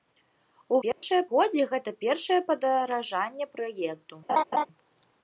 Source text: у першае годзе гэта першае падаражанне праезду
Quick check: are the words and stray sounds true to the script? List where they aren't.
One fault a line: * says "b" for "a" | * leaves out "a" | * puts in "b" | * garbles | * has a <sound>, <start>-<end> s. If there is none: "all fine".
* has a dropout, 0.9-1.0 s
* has a laugh, 4.3-4.7 s